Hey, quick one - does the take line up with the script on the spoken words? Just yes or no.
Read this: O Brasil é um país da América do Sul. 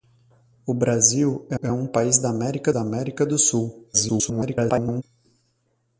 no